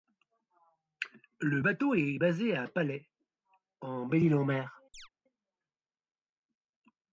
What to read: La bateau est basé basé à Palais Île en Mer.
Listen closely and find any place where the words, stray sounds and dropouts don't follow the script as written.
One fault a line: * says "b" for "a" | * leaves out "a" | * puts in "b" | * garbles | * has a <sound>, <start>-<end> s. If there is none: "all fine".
* says "Le" for "La"
* leaves out "basé"
* puts in "en Belle"
* has a chirp, 4.9-5.1 s